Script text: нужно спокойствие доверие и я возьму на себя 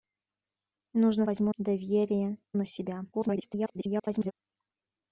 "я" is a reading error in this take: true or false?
true